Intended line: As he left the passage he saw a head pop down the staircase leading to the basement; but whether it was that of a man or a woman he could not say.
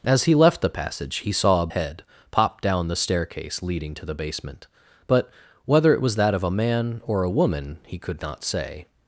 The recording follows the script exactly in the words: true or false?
true